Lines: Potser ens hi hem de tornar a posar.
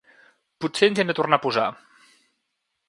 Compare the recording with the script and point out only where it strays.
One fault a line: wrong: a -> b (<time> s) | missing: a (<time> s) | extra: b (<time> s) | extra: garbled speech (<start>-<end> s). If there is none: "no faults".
no faults